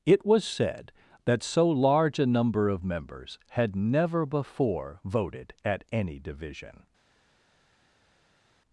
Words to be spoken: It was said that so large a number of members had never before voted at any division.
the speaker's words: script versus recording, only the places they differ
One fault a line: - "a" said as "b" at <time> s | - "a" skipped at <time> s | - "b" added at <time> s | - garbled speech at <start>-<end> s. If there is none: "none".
none